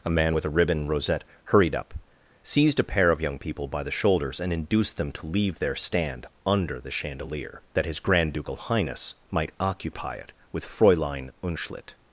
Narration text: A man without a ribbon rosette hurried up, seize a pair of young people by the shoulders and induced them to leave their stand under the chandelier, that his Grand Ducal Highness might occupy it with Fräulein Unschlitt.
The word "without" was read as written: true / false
false